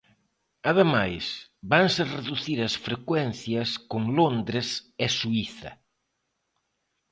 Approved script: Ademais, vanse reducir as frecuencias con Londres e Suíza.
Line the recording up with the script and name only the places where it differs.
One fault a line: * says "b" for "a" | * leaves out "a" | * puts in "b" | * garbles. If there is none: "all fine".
all fine